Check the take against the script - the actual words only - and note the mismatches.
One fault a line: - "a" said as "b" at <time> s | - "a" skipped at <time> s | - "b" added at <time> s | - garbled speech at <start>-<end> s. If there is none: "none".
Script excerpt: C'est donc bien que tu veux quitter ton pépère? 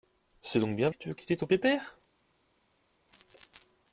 none